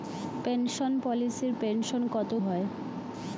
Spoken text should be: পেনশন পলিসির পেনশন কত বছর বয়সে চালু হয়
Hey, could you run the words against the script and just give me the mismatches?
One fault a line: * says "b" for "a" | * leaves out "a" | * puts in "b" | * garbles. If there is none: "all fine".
* leaves out "বছর বয়সে চালু"